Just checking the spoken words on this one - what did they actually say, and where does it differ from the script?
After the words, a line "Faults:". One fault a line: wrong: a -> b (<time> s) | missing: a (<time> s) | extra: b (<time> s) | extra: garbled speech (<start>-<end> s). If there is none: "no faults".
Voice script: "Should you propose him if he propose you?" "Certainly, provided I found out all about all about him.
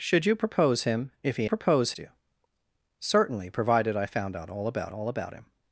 "Should you propose him if he propose you?" "Certainly, provided I found out all about all about him.
Faults:
no faults